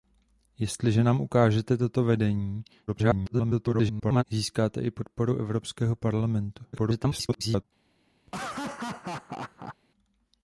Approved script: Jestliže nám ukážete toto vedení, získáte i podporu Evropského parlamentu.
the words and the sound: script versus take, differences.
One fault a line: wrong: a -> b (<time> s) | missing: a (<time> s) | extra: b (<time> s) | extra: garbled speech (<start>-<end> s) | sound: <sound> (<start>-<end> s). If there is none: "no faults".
extra: garbled speech (2.9-4.2 s)
extra: garbled speech (6.7-7.6 s)
sound: laugh (8.3-9.8 s)